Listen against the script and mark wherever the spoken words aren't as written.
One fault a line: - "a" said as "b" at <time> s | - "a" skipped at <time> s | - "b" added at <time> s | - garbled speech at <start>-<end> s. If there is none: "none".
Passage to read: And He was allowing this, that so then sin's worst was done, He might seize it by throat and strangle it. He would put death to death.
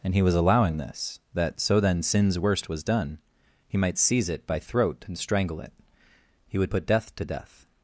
none